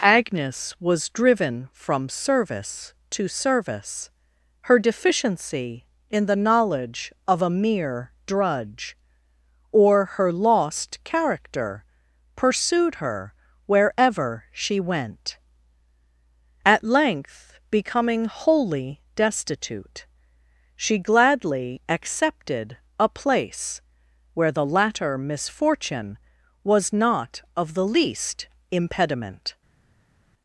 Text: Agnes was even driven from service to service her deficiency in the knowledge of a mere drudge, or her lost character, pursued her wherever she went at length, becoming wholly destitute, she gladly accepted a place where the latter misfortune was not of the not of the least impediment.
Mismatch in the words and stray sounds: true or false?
true